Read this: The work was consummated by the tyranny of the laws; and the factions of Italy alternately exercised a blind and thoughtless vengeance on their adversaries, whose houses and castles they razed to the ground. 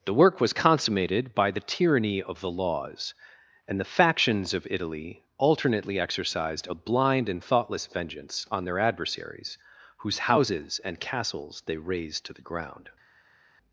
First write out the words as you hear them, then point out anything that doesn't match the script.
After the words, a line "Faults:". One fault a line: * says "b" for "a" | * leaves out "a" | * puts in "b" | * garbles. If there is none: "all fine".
The work was consummated by the tyranny of the laws; and the factions of Italy alternately exercised a blind and thoughtless vengeance on their adversaries, whose houses and castles they razed to the ground.
Faults:
all fine